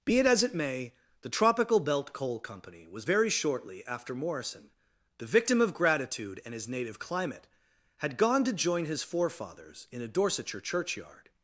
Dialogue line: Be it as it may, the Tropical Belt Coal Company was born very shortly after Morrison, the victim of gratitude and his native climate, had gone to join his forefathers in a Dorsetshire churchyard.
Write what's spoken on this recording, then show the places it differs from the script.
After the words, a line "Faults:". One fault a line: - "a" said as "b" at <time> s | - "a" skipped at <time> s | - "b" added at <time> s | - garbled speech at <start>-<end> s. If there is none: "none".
Be it as it may, the Tropical Belt Coal Company was very shortly after Morrison, the victim of gratitude and his native climate, had gone to join his forefathers in a Dorsetshire churchyard.
Faults:
- "born" skipped at 3.0 s